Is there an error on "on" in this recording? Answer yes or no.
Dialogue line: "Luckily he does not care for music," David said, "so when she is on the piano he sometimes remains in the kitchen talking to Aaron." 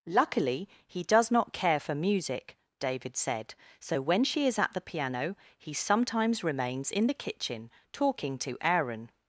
yes